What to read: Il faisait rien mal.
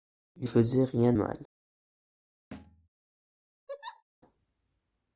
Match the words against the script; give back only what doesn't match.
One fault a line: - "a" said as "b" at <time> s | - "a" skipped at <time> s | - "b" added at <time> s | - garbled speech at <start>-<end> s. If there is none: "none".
none